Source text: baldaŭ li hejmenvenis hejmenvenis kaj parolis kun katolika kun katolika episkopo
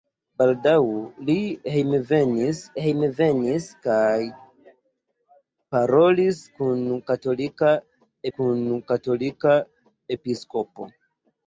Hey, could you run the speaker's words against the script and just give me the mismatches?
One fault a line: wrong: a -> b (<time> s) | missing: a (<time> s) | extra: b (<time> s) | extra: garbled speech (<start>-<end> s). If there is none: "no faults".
no faults